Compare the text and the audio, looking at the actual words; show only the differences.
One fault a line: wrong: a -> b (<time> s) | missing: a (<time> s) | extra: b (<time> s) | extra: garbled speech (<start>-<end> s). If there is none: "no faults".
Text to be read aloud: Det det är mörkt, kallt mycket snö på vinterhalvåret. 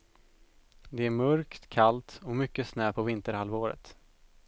missing: det (1.1 s)
extra: och (2.2 s)